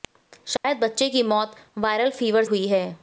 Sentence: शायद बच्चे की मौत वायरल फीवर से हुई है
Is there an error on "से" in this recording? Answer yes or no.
yes